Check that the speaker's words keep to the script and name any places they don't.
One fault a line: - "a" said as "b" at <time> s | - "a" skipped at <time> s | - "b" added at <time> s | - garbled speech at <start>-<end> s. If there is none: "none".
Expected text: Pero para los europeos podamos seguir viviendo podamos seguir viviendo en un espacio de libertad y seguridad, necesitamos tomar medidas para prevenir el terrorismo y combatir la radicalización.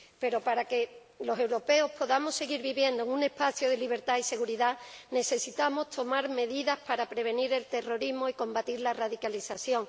- "que" added at 0.7 s
- "podamos seguir viviendo" skipped at 3.0 s